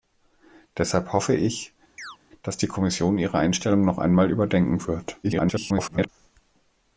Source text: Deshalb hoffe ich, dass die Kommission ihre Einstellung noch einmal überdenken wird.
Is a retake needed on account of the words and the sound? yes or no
yes